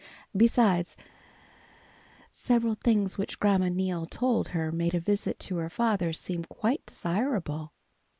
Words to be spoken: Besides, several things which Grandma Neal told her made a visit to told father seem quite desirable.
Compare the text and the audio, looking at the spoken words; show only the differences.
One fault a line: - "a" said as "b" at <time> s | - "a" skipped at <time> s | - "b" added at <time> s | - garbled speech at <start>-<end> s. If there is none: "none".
- "told" said as "her" at 5.6 s